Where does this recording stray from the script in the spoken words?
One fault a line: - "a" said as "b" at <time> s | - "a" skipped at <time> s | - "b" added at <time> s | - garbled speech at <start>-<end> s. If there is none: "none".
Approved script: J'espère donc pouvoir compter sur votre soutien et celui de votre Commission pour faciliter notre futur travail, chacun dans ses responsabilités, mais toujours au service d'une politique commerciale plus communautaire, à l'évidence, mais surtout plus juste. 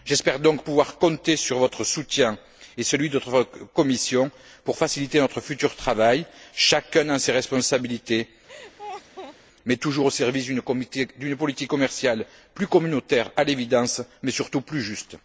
none